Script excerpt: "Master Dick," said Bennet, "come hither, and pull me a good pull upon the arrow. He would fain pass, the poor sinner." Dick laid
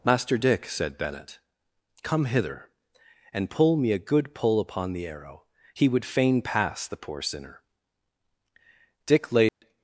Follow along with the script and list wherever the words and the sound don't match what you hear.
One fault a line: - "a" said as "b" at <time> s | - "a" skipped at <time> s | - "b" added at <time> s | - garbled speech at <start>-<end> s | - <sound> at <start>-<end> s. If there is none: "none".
- dropout at 9.5-9.6 s